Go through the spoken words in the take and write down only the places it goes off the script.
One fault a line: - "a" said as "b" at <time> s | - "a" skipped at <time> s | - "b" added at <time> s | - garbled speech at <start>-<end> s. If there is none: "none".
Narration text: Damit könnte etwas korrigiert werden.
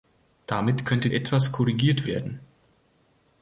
none